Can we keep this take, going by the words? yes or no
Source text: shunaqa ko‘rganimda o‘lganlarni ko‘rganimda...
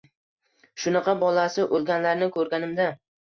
no